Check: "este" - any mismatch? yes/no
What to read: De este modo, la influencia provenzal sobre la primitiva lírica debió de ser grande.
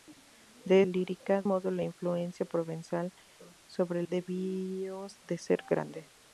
yes